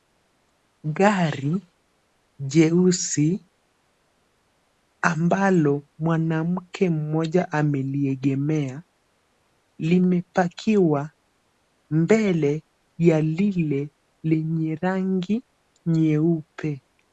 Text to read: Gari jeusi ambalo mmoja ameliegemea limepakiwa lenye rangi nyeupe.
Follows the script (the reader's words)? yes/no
no